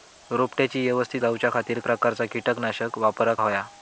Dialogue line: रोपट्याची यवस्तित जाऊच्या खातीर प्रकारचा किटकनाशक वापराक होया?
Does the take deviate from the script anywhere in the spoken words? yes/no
no